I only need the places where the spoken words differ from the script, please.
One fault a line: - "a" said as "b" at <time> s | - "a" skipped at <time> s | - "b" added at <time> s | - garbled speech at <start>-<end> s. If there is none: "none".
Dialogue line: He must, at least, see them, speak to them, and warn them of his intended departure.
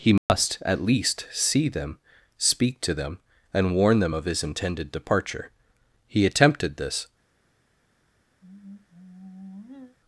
- "He attempted this" added at 6.1 s